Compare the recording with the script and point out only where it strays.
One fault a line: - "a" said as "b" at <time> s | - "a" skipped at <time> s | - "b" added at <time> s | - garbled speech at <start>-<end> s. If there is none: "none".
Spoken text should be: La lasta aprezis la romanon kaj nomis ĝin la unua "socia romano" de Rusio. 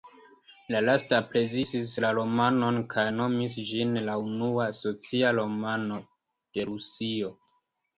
none